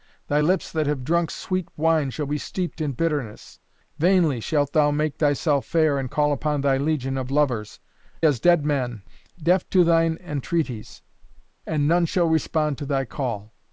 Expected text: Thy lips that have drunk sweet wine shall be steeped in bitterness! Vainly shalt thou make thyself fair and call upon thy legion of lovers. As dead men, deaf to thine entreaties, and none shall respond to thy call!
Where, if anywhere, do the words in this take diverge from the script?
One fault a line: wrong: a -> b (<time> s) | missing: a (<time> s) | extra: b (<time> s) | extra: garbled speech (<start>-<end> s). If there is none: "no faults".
no faults